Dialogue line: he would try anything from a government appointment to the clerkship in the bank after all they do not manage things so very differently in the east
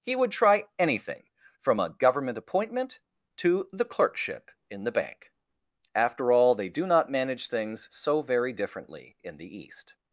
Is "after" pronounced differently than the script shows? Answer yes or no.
no